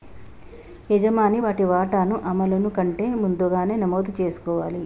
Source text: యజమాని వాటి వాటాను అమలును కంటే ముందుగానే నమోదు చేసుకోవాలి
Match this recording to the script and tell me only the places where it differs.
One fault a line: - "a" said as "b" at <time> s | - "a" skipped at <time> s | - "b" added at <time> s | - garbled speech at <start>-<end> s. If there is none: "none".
none